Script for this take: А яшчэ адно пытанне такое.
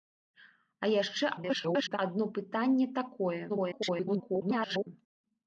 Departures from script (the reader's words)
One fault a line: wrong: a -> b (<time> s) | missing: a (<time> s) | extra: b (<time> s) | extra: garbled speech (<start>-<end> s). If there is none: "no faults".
extra: garbled speech (1.4-2.0 s)
extra: garbled speech (3.5-4.9 s)